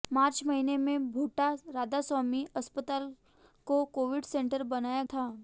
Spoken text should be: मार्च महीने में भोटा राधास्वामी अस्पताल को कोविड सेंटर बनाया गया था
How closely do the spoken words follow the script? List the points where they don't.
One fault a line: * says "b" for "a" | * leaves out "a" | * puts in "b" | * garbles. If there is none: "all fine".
* leaves out "गया"